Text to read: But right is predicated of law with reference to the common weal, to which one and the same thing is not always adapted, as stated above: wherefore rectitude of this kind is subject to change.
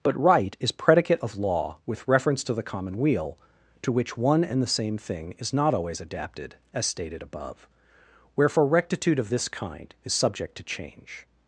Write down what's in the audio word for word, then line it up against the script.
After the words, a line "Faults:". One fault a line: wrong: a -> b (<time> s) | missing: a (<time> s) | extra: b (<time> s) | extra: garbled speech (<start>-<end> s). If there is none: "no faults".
But right is predicate of law with reference to the common weal, to which one and the same thing is not always adapted, as stated above: wherefore rectitude of this kind is subject to change.
Faults:
wrong: predicated -> predicate (0.7 s)